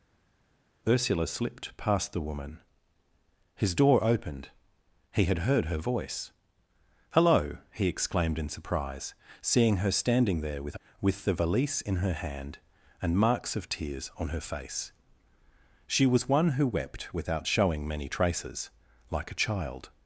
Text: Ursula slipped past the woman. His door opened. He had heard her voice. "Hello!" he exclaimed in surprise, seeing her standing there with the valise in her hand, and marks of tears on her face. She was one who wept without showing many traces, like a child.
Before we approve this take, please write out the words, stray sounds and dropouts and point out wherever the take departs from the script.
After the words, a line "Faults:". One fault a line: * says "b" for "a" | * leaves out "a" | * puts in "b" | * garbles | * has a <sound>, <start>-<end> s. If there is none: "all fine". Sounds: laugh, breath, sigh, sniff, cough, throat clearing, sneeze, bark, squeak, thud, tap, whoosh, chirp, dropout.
Ursula slipped past the woman. His door opened. He had heard her voice. "Hello!" he exclaimed in surprise, seeing her standing there with with the valise in her hand, and marks of tears on her face. She was one who wept without showing many traces, like a child.
Faults:
* puts in "with"